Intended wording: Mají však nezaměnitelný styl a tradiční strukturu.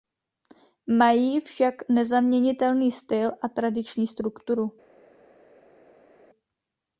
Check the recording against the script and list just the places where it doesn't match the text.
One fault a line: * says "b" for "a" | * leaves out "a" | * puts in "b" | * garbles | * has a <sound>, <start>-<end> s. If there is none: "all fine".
all fine